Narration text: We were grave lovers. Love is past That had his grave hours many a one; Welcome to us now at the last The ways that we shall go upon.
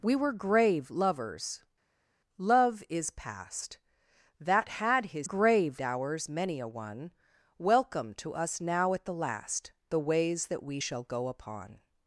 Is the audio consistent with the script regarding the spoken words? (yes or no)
yes